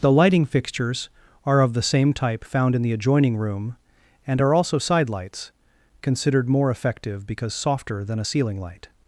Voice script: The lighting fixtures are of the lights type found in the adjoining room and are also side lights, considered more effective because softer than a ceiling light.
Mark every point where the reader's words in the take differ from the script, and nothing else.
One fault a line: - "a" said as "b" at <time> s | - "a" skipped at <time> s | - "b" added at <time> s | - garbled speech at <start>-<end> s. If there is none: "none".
- "lights" said as "same" at 1.8 s